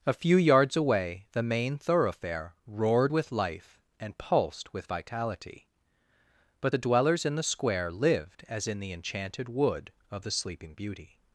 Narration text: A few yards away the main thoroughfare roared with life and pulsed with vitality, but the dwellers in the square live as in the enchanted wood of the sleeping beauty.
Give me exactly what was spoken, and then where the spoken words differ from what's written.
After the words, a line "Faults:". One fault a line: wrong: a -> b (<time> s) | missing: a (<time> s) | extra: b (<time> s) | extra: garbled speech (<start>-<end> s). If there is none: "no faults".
A few yards away the main thoroughfare roared with life and pulsed with vitality, but the dwellers in the square lived as in the enchanted wood of the sleeping beauty.
Faults:
wrong: live -> lived (7.9 s)